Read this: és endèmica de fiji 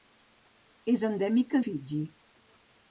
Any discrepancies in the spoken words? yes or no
yes